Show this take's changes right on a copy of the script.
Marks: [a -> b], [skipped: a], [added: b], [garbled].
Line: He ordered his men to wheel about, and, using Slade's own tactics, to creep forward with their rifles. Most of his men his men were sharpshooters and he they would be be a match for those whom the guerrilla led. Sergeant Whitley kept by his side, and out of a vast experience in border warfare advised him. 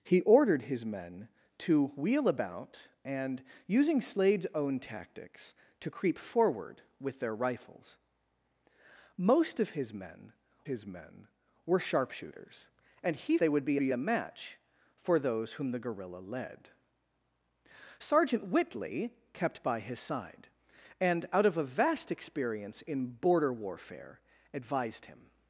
He ordered his men to wheel about, and, using Slade's own tactics, to creep forward with their rifles. Most of his men his men were sharpshooters and he they would be be a match for those whom the guerrilla led. Sergeant Whitley kept by his side, and out of a vast experience in border warfare advised him.